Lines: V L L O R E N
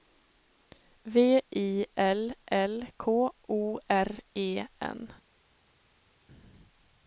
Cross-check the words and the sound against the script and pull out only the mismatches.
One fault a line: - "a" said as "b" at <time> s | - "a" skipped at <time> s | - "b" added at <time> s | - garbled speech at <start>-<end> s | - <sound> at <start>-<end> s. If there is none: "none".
- "I" added at 1.5 s
- "K" added at 3.0 s